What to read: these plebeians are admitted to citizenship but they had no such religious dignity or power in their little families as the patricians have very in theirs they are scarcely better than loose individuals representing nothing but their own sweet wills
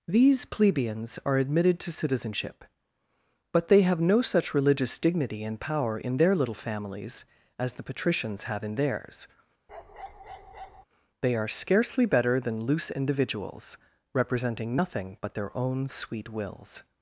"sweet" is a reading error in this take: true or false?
false